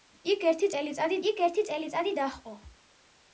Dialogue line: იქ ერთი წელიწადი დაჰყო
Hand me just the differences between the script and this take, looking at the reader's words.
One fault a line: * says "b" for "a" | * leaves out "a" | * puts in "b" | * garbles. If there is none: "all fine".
* puts in "იქ ერთი წელიწადი"